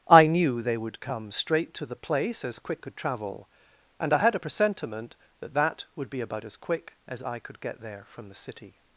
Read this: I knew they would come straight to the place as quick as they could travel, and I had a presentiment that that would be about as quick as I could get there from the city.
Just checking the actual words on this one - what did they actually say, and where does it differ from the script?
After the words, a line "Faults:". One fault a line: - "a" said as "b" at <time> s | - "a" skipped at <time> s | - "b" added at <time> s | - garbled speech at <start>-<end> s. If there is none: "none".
I knew they would come straight to the place as quick could travel, and I had a presentiment that that would be about as quick as I could get there from the city.
Faults:
- "as they" skipped at 2.8 s